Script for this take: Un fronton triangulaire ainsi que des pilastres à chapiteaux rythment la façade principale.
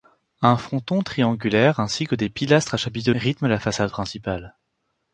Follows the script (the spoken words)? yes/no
yes